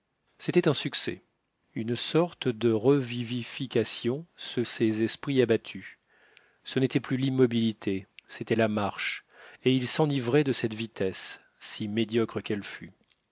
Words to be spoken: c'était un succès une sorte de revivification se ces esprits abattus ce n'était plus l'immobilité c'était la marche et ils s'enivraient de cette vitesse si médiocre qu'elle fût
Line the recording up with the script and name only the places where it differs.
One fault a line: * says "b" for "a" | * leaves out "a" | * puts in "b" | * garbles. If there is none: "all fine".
all fine